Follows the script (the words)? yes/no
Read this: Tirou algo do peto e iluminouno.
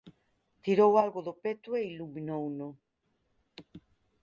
yes